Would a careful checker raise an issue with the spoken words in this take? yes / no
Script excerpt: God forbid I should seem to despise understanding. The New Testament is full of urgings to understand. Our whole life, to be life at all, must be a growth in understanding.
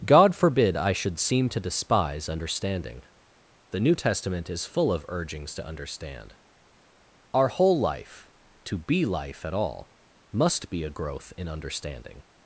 no